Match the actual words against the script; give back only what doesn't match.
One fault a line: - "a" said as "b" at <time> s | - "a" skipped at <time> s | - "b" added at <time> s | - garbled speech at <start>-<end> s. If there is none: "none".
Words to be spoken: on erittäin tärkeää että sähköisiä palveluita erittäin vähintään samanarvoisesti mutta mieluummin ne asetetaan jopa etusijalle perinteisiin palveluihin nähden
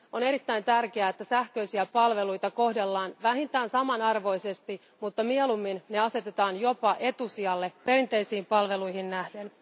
- "erittäin" said as "kohdellaan" at 2.5 s